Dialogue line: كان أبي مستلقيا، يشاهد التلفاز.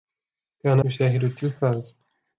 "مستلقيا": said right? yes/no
no